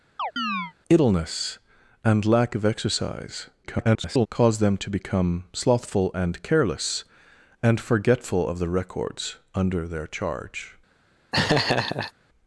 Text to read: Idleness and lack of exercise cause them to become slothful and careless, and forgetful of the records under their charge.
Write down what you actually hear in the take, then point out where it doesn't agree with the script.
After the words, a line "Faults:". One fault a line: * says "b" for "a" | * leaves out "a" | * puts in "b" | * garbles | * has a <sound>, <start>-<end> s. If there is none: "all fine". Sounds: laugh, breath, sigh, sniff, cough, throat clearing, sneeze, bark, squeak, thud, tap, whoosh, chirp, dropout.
Idleness and lack of exercise [garbled] cause them to become slothful and careless, and forgetful of the records under their charge.
Faults:
* has a chirp, 0.2-0.7 s
* garbles
* has a laugh, 11.3-12.1 s